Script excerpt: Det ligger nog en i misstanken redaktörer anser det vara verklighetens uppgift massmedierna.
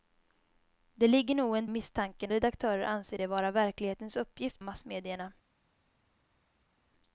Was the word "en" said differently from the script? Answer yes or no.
no